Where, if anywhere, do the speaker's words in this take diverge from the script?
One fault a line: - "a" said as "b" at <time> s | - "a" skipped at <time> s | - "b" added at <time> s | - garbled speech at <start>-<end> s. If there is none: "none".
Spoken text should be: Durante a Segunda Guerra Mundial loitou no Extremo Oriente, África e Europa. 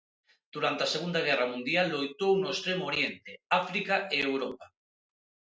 none